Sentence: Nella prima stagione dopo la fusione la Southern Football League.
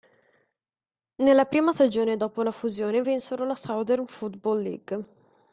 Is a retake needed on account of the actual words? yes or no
yes